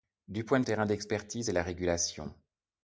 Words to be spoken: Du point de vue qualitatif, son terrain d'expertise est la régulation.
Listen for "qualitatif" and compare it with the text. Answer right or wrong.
wrong